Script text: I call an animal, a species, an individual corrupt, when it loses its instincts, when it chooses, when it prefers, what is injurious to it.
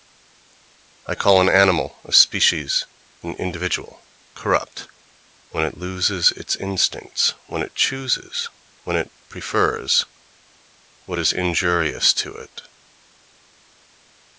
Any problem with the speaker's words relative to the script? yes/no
no